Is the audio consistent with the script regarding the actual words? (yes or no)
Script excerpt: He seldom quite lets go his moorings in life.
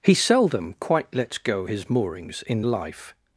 yes